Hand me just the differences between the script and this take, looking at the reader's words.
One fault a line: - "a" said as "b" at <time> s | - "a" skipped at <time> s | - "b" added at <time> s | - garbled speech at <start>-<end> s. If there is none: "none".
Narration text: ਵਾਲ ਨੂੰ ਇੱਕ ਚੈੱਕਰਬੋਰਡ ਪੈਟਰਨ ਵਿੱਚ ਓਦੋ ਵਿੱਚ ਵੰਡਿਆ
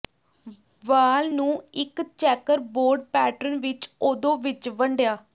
none